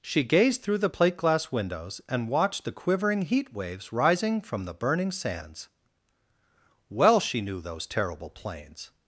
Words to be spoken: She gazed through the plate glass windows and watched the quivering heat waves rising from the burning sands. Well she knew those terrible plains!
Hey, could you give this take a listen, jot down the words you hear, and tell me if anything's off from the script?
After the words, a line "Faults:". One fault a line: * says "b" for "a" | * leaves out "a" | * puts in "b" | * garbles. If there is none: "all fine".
She gazed through the plate glass windows and watched the quivering heat waves rising from the burning sands. Well she knew those terrible plains!
Faults:
all fine